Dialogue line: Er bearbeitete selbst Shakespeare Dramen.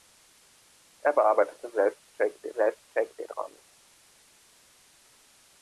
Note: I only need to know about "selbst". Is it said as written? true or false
true